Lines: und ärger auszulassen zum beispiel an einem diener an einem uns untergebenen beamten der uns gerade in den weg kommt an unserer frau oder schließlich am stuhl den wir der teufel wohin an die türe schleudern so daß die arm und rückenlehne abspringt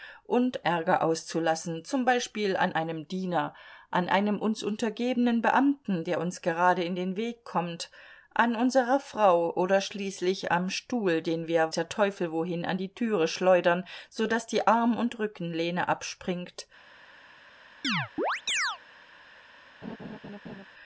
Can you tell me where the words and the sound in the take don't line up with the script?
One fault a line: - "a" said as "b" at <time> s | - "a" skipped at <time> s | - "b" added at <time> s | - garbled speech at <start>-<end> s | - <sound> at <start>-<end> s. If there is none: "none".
- chirp at 17.8-18.8 s
- laugh at 19.8-20.6 s